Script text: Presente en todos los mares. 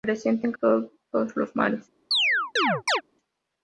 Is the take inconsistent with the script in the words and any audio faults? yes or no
yes